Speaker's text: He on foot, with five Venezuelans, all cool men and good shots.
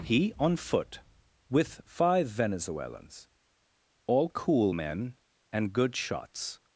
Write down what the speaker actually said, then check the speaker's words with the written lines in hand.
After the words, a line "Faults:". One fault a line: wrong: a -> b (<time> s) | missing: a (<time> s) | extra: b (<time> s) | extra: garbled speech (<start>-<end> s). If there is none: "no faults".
He on foot, with five Venezuelans, all cool men and good shots.
Faults:
no faults